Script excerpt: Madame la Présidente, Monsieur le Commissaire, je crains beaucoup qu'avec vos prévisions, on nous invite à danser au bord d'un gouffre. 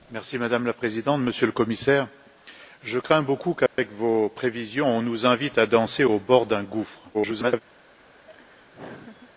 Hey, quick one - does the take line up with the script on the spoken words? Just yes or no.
no